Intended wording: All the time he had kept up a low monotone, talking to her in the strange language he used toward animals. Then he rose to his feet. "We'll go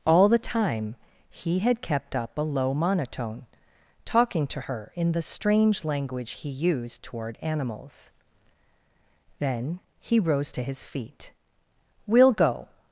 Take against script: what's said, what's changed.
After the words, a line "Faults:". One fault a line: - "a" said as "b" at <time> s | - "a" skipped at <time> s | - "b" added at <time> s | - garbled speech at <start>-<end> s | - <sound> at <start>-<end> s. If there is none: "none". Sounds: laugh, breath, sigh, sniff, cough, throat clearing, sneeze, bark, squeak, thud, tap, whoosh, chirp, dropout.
All the time he had kept up a low monotone, talking to her in the strange language he used toward animals. Then he rose to his feet. "We'll go
Faults:
none